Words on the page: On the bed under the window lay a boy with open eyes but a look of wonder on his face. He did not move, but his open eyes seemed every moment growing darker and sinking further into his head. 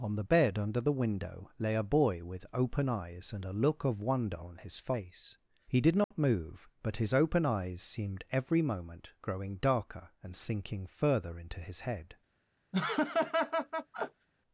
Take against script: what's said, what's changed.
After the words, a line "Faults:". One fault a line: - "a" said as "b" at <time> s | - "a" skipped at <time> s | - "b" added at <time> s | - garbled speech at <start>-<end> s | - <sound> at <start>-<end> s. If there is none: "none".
On the bed under the window lay a boy with open eyes and a look of wonder on his face. He did not move, but his open eyes seemed every moment growing darker and sinking further into his head.
Faults:
- "but" said as "and" at 3.3 s
- dropout at 6.0-6.1 s
- laugh at 12.7-14.3 s